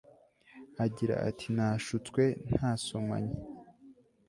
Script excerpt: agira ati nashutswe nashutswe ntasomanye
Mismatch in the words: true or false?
true